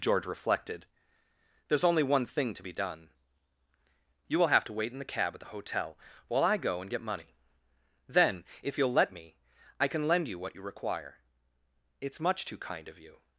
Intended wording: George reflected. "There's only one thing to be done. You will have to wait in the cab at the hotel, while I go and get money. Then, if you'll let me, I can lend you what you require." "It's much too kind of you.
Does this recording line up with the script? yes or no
yes